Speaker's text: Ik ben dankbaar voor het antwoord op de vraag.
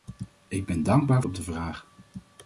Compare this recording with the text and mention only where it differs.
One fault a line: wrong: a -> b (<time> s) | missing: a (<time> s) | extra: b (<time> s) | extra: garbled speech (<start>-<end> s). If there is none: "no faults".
missing: voor het antwoord (1.2 s)